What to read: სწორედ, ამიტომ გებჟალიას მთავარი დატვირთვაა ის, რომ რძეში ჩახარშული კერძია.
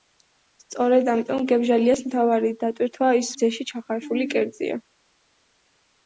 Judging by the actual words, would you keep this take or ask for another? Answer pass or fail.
fail